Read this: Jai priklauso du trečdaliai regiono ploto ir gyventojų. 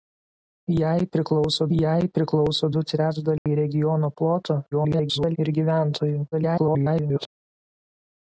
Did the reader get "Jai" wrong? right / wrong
right